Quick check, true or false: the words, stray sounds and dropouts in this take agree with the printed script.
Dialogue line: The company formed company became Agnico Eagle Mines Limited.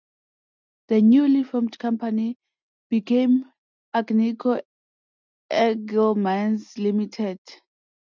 false